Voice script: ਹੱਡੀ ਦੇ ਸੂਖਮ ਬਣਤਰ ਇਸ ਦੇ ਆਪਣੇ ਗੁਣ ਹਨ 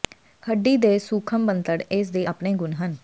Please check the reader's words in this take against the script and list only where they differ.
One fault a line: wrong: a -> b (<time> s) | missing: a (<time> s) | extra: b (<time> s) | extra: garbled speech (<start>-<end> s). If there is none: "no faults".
no faults